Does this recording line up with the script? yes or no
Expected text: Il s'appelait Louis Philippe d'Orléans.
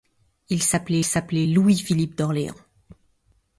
no